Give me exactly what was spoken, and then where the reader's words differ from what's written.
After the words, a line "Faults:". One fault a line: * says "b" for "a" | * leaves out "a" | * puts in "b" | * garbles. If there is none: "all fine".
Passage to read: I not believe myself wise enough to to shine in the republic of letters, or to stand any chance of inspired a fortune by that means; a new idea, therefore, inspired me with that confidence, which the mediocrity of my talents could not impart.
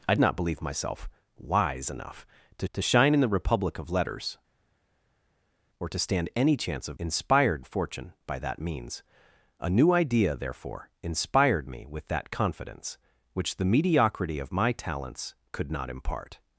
I not believe myself wise enough to to shine in the republic of letters, or to stand any chance of inspired a fortune by that means; a new idea, therefore, inspired me with that confidence, which the mediocrity of my talents could not impart.
Faults:
all fine